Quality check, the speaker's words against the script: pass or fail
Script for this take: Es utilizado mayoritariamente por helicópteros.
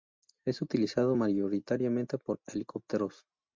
pass